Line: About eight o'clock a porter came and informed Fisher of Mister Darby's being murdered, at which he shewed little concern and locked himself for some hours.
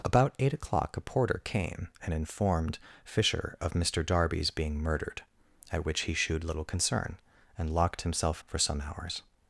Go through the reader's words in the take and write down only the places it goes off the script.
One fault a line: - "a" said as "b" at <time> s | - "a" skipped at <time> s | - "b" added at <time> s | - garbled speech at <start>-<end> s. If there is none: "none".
none